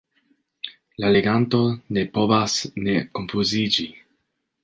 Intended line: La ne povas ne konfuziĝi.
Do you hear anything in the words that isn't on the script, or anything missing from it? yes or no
yes